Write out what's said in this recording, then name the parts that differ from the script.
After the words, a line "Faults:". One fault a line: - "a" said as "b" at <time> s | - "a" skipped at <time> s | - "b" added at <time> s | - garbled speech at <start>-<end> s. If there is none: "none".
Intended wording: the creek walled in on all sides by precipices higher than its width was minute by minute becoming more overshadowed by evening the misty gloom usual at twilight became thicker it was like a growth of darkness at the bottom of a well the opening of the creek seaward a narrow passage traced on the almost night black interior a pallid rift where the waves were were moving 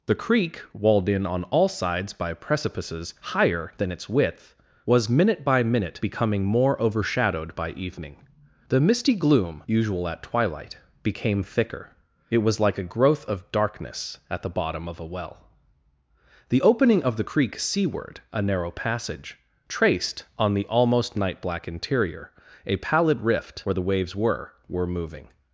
the creek walled in on all sides by precipices higher than its width was minute by minute becoming more overshadowed by evening the misty gloom usual at twilight became thicker it was like a growth of darkness at the bottom of a well the opening of the creek seaward a narrow passage traced on the almost night black interior a pallid rift where the waves were were moving
Faults:
none